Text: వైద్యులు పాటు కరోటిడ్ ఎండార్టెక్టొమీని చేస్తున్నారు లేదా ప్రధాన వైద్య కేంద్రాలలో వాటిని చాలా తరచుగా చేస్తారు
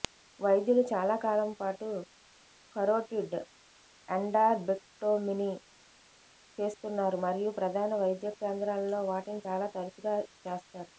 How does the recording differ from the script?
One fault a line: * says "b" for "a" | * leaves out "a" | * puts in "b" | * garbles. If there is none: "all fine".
* puts in "చాలా కాలం"
* says "మరియు" for "లేదా"